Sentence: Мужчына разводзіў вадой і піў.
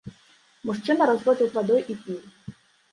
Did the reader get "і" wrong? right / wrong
right